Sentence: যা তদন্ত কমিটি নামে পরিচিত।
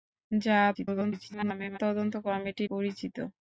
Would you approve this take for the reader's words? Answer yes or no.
no